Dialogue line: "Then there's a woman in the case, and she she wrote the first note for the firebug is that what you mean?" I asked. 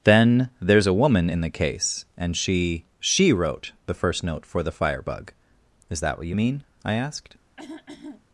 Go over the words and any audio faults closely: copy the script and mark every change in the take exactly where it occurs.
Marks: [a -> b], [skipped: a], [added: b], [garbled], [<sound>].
"Then there's a woman in the case, and she she wrote the first note for the firebug is that what you mean?" I asked. [throat clearing]